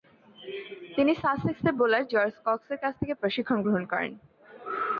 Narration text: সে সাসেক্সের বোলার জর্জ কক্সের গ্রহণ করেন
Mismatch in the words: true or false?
true